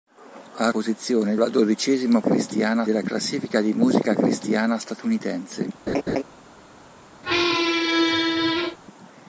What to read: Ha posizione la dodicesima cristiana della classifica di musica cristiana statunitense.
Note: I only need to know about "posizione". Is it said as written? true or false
true